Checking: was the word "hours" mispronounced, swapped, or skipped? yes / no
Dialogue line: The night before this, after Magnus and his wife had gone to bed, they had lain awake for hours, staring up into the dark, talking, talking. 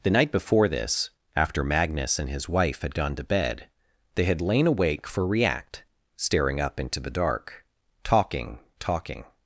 yes